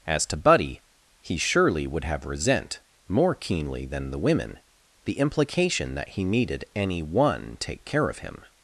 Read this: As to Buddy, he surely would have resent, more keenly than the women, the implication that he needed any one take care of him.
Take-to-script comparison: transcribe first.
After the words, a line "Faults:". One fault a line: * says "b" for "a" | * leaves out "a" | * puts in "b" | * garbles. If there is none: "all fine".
As to Buddy, he surely would have resent, more keenly than the women, the implication that he needed any one take care of him.
Faults:
all fine